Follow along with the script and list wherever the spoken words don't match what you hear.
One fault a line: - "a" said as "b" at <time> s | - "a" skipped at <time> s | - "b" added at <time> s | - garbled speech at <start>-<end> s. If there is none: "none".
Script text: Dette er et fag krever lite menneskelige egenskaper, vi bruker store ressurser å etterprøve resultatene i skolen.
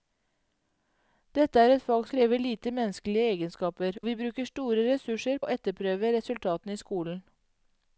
none